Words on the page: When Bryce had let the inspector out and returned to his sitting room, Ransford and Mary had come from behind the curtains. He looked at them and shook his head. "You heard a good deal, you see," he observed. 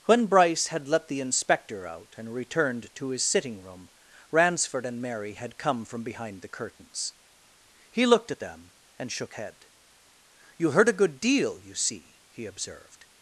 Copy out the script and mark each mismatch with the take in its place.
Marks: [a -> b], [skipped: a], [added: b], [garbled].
When Bryce had let the inspector out and returned to his sitting room, Ransford and Mary had come from behind the curtains. He looked at them and shook [skipped: his] head. "You heard a good deal, you see," he observed.